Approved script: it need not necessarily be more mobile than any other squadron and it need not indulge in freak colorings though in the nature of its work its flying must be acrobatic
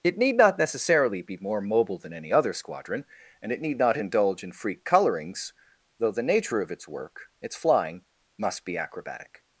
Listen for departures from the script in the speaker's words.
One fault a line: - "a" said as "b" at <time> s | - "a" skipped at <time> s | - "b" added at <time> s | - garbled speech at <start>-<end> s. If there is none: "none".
- "in" skipped at 6.1 s